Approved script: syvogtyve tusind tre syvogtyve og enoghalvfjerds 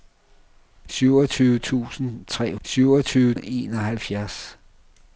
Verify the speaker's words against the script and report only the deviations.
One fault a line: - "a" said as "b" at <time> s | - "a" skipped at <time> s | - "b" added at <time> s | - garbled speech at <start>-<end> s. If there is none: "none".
none